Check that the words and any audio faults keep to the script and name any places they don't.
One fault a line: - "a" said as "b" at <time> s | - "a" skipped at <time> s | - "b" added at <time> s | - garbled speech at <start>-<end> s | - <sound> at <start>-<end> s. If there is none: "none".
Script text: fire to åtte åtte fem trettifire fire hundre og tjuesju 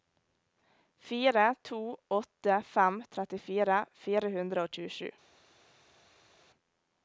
- "åtte" skipped at 2.6 s